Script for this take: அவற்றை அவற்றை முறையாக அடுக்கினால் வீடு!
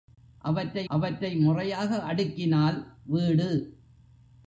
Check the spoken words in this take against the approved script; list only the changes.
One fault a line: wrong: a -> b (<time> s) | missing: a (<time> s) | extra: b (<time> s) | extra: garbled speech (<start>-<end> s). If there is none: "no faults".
no faults